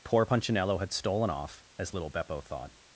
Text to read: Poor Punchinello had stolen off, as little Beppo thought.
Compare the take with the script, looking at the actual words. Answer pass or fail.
pass